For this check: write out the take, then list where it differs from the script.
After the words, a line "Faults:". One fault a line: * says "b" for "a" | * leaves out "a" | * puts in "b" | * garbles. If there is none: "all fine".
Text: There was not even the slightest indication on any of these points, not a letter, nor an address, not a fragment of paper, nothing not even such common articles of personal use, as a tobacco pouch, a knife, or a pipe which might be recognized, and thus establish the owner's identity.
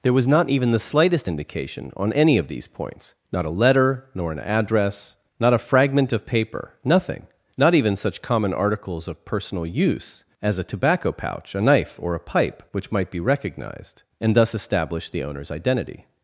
There was not even the slightest indication on any of these points, not a letter, nor an address, not a fragment of paper, nothing not even such common articles of personal use, as a tobacco pouch, a knife, or a pipe which might be recognized, and thus establish the owner's identity.
Faults:
all fine